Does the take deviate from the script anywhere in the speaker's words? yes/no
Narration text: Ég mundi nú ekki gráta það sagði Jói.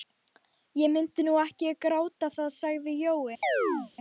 no